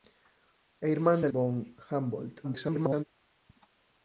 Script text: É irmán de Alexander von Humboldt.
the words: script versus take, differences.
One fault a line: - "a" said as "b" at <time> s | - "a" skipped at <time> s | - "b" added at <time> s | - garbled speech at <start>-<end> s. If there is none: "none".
- "Alexander" skipped at 1.3 s
- garbled speech at 2.4-3.0 s